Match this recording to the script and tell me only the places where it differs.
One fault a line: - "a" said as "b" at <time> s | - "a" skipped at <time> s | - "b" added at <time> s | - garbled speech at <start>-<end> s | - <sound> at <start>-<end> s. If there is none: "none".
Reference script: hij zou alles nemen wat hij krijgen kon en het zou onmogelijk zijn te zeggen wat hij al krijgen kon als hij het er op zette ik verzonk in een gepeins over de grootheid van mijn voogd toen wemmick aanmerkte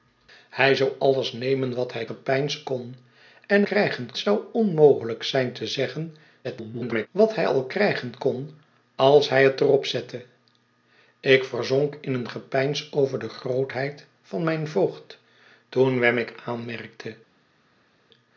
- "krijgen" said as "gepeins" at 2.0 s
- "het" said as "krijgen" at 3.6 s
- garbled speech at 6.4-7.1 s